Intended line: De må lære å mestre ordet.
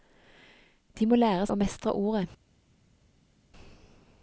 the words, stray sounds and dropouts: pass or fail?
pass